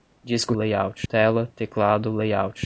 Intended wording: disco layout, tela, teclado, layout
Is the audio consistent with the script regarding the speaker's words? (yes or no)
yes